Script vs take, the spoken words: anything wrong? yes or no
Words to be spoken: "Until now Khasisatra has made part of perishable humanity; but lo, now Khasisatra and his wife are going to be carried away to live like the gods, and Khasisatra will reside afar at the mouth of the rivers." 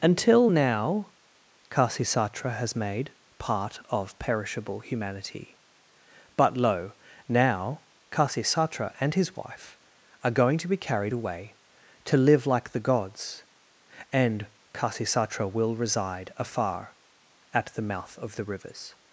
no